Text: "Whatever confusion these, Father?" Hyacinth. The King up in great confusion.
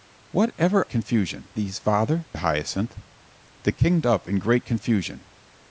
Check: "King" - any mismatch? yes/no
no